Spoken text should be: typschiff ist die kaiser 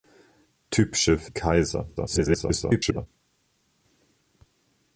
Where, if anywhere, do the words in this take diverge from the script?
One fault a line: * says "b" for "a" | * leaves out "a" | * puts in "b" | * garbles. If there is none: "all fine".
* leaves out "ist"
* garbles